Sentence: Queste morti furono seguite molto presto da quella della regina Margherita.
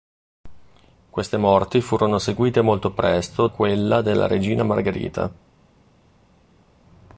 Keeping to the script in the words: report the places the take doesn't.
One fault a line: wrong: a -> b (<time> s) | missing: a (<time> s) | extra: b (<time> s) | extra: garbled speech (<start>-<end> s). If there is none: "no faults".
missing: da (3.5 s)